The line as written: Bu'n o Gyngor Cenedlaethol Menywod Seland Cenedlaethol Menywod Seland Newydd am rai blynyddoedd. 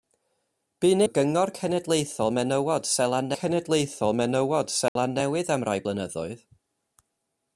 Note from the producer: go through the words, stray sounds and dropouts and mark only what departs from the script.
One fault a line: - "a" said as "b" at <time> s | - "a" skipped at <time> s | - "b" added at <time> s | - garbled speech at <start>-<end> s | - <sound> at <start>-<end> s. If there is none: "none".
- dropout at 4.9-5.0 s